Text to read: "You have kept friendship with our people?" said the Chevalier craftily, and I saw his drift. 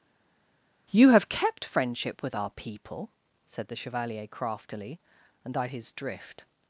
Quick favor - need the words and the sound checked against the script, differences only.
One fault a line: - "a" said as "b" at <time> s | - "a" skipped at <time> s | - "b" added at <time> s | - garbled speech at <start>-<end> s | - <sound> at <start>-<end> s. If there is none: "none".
- "saw" skipped at 5.7 s